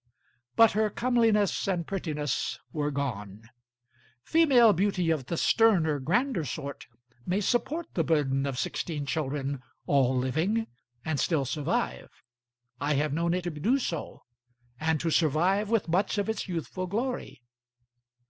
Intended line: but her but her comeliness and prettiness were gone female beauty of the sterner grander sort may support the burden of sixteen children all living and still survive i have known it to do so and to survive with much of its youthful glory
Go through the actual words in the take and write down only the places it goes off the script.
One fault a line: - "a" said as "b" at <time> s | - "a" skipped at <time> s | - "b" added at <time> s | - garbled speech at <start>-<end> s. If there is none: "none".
- "but her" skipped at 0.9 s